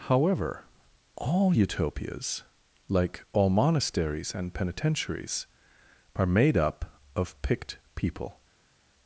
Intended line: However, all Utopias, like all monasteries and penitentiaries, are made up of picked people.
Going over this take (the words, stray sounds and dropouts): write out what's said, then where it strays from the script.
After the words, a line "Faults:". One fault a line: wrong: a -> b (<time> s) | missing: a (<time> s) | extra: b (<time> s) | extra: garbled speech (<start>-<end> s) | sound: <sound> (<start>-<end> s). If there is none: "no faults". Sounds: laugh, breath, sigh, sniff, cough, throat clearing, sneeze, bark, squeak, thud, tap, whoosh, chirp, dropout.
However, all Utopias, like all monasteries and penitentiaries, are made up of picked people.
Faults:
no faults